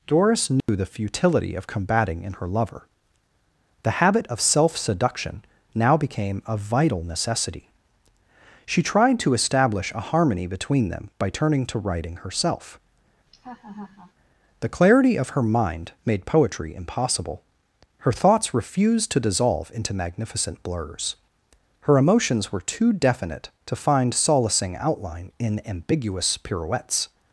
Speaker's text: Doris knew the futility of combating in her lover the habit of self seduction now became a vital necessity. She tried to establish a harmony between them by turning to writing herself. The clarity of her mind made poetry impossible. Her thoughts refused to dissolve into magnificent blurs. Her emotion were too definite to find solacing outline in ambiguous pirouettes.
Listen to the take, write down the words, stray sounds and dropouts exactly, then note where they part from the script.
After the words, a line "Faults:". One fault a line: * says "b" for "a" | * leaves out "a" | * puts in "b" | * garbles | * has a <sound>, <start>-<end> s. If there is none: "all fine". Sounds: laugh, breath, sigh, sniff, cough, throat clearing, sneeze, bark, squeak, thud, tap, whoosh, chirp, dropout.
Doris knew the futility of combating in her lover the habit of self seduction now became a vital necessity. She tried to establish a harmony between them by turning to writing herself. The clarity of her mind made poetry impossible. Her thoughts refused to dissolve into magnificent blurs. Her emotions were too definite to find solacing outline in ambiguous pirouettes.
Faults:
* has a dropout, 0.6-0.7 s
* has a laugh, 13.3-14.1 s
* says "emotions" for "emotion"